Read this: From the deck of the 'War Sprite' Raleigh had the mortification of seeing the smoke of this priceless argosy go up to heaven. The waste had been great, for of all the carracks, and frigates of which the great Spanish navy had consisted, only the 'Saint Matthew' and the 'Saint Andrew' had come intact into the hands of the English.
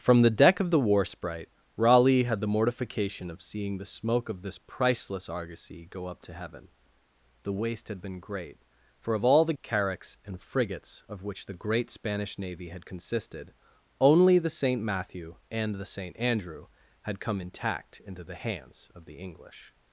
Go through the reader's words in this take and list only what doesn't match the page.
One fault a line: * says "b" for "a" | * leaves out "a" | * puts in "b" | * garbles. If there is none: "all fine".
all fine